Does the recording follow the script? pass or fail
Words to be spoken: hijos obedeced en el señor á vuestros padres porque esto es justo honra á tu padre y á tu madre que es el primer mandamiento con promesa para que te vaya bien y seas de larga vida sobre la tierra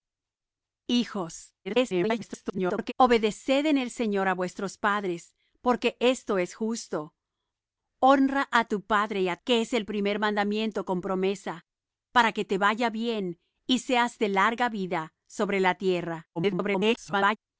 fail